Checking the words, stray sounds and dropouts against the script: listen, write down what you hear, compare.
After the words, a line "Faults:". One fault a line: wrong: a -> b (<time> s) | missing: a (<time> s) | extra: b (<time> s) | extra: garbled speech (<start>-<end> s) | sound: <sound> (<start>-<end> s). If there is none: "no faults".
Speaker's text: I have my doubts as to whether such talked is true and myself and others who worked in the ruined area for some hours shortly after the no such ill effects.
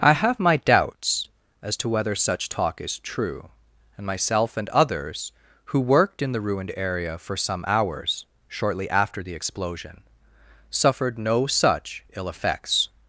I have my doubts as to whether such talk is true and myself and others who worked in the ruined area for some hours shortly after the explosion suffered no such ill effects.
Faults:
wrong: talked -> talk (2.5 s)
extra: explosion suffered (9.3 s)